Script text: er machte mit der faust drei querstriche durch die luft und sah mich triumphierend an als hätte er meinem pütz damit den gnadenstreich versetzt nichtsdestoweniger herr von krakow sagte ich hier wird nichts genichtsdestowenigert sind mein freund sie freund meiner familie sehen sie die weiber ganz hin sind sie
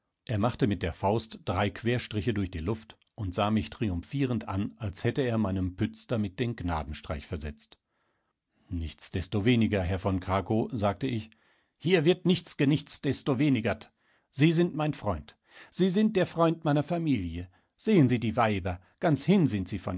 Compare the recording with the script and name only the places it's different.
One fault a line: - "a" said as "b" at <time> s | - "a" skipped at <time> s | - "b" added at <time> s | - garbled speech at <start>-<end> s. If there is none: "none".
- "sie" added at 14.3 s
- "sind der" added at 15.9 s